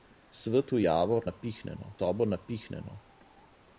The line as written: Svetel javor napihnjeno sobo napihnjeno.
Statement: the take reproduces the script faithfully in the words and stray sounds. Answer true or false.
true